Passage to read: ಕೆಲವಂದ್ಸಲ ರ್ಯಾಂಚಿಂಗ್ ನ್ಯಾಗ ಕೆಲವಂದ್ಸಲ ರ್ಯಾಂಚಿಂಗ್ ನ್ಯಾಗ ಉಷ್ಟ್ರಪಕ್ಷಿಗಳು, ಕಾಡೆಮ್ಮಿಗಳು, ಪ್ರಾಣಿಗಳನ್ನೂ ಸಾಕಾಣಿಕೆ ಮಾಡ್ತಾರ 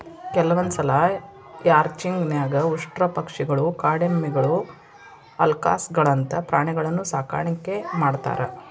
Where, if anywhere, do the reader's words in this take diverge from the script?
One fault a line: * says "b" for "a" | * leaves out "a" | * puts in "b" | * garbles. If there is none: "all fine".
* leaves out "ಕೆಲವಂದ್ಸಲ ರ್ಯಾಂಚಿಂಗ್ ನ್ಯಾಗ"
* puts in "ಅಲ್ಕಾಸ್ಗಳಂತ"